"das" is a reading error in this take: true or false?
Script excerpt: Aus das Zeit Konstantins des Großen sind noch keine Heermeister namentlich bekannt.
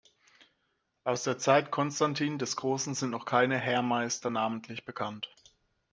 true